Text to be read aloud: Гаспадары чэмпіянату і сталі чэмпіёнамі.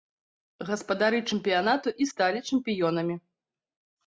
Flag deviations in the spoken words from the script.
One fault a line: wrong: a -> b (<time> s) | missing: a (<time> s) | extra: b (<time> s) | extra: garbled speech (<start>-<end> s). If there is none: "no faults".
no faults